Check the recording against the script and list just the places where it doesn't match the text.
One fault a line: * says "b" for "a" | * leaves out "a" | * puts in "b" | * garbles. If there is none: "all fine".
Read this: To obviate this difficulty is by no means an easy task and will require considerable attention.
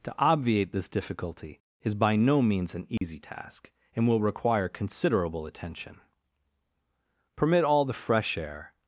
* puts in "Permit all the fresh air"